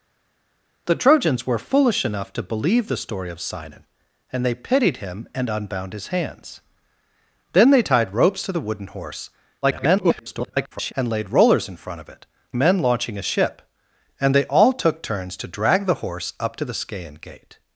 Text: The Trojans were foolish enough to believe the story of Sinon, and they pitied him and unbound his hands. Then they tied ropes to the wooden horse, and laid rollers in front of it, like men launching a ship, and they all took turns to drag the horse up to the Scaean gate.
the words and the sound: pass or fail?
fail